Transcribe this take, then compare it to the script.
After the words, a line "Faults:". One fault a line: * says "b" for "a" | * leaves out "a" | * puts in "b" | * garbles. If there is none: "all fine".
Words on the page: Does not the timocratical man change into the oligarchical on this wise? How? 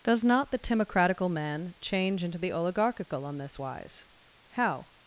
Does not the timocratical man change into the oligarchical on this wise? How?
Faults:
all fine